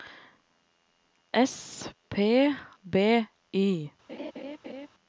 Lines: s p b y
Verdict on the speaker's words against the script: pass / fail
pass